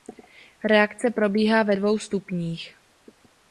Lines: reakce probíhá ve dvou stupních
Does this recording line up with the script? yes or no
yes